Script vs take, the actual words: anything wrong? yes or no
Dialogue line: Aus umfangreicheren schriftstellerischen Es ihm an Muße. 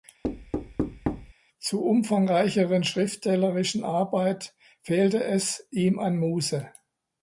yes